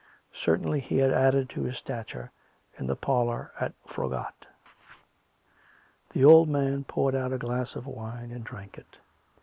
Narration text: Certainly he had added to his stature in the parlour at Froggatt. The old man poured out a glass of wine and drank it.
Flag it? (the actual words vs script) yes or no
no